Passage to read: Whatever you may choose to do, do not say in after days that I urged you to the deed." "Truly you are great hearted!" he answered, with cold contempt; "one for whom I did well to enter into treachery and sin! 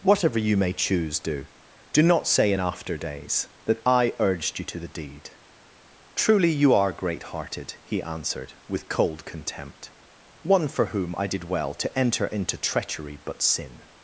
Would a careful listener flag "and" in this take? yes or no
yes